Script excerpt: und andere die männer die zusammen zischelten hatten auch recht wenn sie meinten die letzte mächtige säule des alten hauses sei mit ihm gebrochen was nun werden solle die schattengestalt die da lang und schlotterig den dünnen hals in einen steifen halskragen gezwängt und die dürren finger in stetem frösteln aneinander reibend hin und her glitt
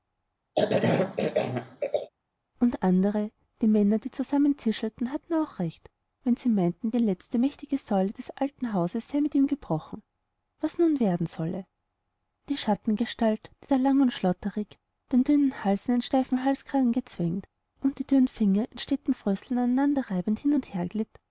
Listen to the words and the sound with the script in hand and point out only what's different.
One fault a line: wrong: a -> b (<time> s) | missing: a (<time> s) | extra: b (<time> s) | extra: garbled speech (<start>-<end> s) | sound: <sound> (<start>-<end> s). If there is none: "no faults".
sound: cough (0.5-2.1 s)